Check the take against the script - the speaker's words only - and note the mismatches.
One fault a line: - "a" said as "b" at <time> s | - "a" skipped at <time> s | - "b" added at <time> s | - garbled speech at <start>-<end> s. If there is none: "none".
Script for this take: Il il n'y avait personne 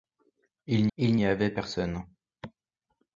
none